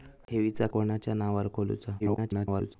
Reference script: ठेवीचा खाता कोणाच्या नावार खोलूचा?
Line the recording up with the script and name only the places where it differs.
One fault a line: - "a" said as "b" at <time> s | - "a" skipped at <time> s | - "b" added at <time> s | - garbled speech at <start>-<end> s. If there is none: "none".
- "खाता" skipped at 0.7 s
- garbled speech at 2.0-2.8 s